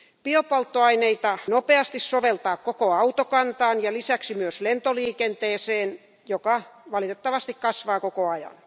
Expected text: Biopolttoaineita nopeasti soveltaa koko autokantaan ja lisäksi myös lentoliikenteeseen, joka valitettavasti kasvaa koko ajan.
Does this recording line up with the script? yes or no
yes